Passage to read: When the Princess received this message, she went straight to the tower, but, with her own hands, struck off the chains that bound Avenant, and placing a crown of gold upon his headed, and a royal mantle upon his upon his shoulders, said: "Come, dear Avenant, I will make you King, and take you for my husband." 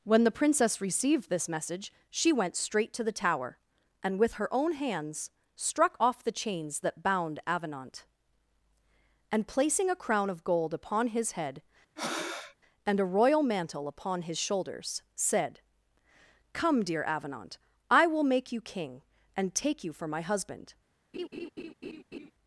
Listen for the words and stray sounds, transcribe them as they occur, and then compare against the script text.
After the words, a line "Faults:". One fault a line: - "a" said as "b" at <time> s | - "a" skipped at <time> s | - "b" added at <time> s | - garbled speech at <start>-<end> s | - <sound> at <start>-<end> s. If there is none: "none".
When the Princess received this message, she went straight to the tower, and, with her own hands, struck off the chains that bound Avenant, and placing a crown of gold upon his head, and a royal mantle upon his shoulders, said: "Come, dear Avenant, I will make you King, and take you for my husband."
Faults:
- "but" said as "and" at 4.0 s
- "headed" said as "head" at 11.3 s
- breath at 12.0-12.6 s
- "upon his" skipped at 14.4 s
- laugh at 21.1-22.3 s